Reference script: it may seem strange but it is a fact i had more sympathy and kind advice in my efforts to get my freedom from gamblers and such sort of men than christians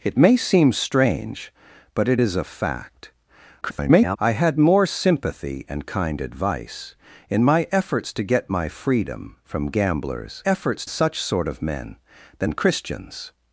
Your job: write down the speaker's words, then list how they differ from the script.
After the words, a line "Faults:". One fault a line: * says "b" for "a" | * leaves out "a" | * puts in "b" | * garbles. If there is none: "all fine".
it may seem strange but it is a fact [garbled] i had more sympathy and kind advice in my efforts to get my freedom from gamblers efforts such sort of men than christians
Faults:
* garbles
* says "efforts" for "and"